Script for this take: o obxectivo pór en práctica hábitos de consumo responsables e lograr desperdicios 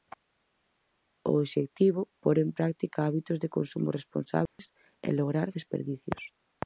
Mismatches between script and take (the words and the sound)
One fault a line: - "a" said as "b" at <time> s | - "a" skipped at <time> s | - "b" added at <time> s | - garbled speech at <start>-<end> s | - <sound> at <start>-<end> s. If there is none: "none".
- dropout at 4.5-4.6 s